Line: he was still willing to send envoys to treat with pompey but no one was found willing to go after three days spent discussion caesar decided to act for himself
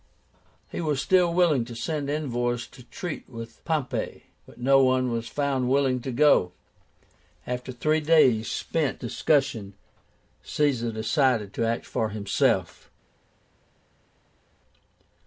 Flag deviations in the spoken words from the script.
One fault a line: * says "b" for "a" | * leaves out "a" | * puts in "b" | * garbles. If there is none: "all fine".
all fine